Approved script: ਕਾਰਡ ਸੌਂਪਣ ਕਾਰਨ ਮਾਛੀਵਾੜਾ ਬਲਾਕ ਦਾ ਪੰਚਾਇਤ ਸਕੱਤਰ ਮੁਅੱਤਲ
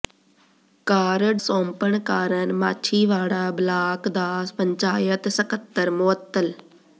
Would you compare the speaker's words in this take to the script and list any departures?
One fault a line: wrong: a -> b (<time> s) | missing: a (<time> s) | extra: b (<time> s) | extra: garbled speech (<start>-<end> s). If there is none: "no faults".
no faults